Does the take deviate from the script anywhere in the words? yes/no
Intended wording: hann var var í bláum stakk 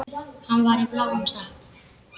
yes